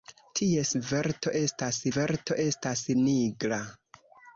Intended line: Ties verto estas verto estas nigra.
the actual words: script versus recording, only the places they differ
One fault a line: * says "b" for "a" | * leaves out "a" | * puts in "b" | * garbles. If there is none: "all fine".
all fine